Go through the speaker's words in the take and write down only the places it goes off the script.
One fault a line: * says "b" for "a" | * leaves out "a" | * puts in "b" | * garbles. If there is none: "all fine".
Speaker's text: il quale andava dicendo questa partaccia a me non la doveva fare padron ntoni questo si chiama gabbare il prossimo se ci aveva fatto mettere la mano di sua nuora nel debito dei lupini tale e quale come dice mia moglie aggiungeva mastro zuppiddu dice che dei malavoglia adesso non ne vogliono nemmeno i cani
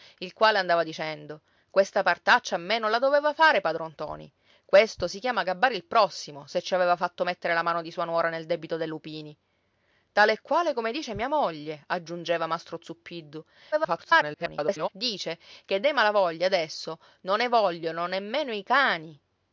* garbles